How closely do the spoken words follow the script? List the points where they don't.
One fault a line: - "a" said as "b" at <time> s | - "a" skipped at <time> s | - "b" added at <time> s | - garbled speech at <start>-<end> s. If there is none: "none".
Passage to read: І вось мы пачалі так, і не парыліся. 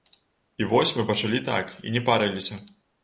none